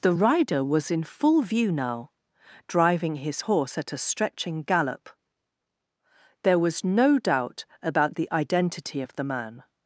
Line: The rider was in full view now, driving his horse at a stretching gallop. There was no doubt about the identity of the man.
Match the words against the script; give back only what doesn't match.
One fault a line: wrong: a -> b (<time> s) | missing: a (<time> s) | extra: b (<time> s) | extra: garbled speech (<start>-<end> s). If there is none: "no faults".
no faults